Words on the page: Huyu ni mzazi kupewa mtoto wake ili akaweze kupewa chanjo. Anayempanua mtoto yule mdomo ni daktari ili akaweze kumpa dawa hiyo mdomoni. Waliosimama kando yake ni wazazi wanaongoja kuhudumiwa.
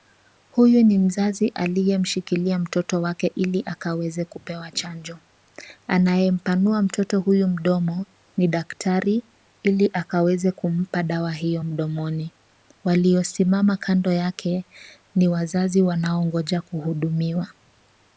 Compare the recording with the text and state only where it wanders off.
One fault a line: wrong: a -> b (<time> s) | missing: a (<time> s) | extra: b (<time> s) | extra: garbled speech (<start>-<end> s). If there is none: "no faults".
wrong: kupewa -> aliyemshikilia (1.5 s)
wrong: yule -> huyu (7.2 s)